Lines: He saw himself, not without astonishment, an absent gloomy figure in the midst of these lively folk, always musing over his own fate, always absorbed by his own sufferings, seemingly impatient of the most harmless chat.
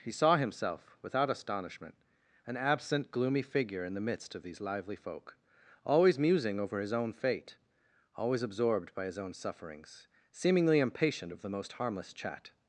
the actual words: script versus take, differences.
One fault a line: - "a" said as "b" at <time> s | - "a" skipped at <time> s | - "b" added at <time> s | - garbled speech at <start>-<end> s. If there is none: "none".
- "not" skipped at 1.0 s